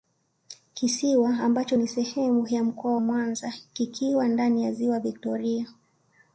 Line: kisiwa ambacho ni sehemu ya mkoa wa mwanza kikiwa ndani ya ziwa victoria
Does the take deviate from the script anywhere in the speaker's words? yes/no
yes